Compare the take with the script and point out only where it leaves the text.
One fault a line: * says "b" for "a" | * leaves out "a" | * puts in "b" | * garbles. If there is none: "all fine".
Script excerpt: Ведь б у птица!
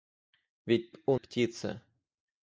all fine